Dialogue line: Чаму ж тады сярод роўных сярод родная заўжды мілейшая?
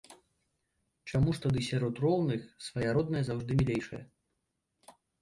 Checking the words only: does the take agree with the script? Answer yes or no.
no